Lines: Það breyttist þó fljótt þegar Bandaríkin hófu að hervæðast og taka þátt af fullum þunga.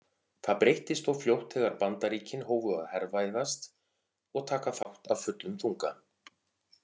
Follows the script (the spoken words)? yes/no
yes